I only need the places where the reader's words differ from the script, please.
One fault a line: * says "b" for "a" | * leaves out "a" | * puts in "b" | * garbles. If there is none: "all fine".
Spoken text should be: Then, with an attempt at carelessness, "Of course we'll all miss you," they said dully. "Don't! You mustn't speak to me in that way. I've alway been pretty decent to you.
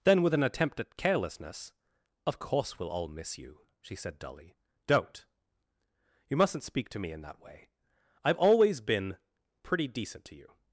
* says "she" for "they"
* says "always" for "alway"